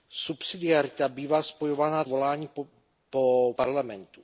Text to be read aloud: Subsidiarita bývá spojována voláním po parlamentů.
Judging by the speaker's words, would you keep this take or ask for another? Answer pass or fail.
pass